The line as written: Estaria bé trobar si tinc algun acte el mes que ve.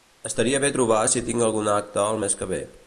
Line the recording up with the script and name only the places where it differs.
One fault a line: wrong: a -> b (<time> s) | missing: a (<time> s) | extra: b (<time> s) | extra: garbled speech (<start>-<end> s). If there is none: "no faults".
no faults